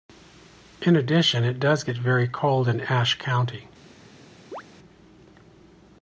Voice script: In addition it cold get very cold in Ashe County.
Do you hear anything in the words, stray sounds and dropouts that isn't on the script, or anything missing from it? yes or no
yes